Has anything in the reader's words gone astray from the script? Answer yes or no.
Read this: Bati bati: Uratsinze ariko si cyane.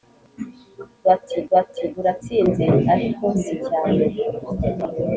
no